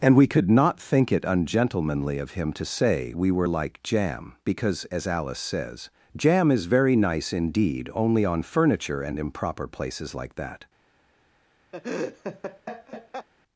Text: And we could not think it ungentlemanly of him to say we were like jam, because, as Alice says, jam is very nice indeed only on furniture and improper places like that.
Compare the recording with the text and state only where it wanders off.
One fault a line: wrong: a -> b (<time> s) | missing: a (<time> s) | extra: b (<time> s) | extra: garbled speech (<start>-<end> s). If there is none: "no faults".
no faults